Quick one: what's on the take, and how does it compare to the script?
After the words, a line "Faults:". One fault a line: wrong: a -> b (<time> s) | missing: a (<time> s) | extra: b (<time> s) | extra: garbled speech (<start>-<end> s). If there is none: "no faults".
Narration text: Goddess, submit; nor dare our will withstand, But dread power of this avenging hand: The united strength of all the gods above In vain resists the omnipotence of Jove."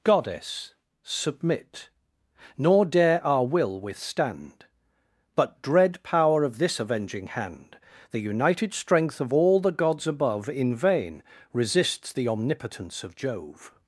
Goddess, submit; nor dare our will withstand, But dread power of this avenging hand: The united strength of all the gods above In vain resists the omnipotence of Jove."
Faults:
no faults